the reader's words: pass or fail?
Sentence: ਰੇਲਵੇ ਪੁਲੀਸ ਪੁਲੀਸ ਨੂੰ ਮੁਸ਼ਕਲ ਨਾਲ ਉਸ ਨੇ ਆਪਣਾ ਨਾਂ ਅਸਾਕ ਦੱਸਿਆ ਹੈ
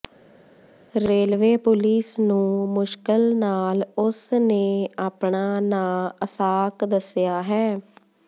fail